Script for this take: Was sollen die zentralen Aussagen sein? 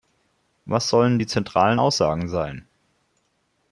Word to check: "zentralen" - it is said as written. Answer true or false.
true